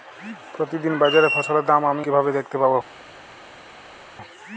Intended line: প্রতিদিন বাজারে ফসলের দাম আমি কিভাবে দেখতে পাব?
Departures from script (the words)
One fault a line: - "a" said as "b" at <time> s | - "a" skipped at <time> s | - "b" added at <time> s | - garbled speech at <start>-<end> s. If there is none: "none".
none